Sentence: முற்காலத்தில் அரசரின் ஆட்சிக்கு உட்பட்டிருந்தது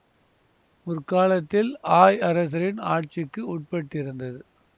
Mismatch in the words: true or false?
true